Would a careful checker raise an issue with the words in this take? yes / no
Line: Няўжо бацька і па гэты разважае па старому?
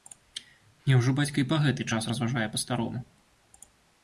yes